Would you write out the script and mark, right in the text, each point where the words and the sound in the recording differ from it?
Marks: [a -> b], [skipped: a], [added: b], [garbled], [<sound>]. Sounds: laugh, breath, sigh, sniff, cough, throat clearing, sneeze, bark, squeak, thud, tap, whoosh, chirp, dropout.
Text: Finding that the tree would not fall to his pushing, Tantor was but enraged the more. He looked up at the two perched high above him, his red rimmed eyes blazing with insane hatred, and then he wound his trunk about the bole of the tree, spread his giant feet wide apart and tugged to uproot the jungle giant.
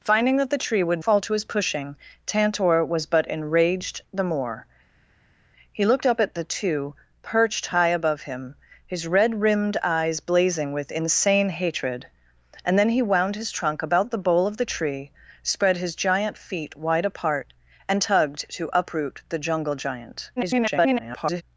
Finding that the tree would [skipped: not] fall to his pushing, Tantor was but enraged the more. He looked up at the two perched high above him, his red rimmed eyes blazing with insane hatred, and then he wound his trunk about the bole of the tree, spread his giant feet wide apart and tugged to uproot the jungle giant. [garbled]